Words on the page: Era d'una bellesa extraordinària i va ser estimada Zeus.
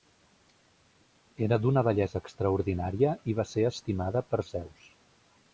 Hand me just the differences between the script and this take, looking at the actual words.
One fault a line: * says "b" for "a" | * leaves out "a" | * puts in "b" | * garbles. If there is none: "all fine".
* puts in "per"